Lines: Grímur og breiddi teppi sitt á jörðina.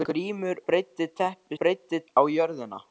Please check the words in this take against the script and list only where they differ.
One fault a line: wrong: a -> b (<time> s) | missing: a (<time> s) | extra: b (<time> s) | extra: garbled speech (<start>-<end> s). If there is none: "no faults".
missing: og (0.6 s)
wrong: sitt -> breiddi (1.6 s)